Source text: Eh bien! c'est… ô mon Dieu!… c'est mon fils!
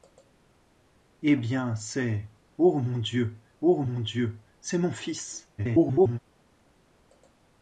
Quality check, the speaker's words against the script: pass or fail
fail